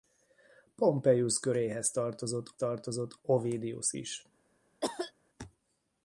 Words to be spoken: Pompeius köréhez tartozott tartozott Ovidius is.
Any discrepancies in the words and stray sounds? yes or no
yes